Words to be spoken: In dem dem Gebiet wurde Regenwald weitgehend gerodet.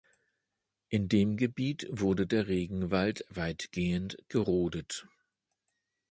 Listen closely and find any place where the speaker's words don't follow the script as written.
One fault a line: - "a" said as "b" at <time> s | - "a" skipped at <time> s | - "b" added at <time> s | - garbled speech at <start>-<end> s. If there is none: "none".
- "dem" skipped at 1.4 s
- "der" added at 2.2 s